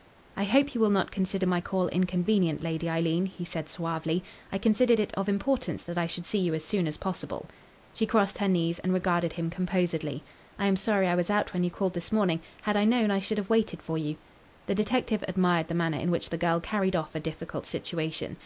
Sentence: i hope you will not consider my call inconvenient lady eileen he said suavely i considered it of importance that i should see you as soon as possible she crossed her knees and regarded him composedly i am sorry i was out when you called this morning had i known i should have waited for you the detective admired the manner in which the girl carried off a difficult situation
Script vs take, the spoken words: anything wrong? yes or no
no